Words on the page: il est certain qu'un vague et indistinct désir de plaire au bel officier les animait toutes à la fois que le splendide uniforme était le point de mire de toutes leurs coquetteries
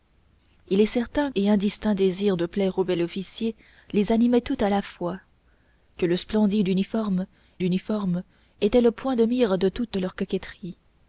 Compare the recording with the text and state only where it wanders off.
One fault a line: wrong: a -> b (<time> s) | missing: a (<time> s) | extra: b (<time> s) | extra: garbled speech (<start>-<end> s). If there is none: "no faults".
missing: qu'un vague (1.3 s)
extra: uniforme (7.6 s)